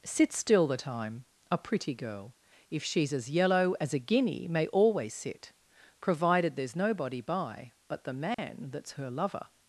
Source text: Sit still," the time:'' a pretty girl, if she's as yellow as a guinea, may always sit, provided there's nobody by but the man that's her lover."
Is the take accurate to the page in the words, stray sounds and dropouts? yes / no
no